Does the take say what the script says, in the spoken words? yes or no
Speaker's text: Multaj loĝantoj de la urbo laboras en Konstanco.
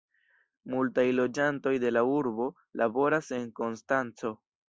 yes